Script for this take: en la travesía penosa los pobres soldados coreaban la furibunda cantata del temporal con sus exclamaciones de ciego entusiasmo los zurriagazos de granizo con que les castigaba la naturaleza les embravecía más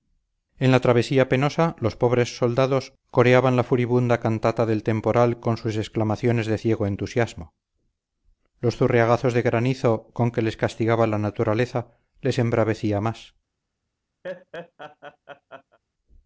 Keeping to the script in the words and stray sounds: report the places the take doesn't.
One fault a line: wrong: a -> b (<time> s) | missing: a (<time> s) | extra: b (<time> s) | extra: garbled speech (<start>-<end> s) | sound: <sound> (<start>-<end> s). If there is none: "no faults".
sound: laugh (14.2-15.8 s)